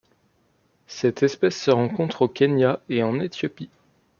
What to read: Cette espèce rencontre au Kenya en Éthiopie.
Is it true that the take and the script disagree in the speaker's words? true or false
true